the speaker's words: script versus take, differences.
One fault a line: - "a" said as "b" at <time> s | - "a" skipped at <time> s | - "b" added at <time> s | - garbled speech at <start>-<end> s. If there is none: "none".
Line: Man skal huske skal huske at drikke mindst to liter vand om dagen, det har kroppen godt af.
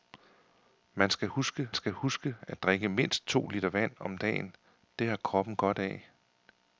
none